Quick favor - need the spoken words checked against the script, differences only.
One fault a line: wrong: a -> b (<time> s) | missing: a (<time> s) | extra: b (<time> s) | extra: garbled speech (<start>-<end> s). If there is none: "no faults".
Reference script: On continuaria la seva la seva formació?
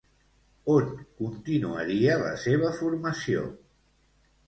missing: la seva (2.7 s)